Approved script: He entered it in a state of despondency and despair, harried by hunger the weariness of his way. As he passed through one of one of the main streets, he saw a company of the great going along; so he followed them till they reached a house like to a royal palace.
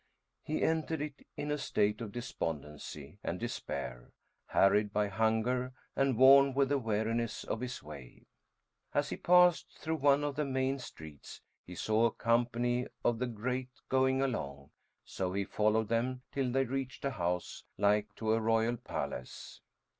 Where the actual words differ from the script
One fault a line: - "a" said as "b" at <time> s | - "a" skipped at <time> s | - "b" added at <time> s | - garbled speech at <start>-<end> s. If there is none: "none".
- "and worn with" added at 6.0 s
- "one of" skipped at 10.3 s